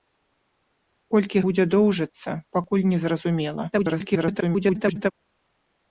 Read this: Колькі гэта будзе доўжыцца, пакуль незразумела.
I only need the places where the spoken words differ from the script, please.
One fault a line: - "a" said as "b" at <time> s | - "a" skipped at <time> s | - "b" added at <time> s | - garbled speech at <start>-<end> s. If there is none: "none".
- "гэта" skipped at 1.4 s
- garbled speech at 3.7-5.1 s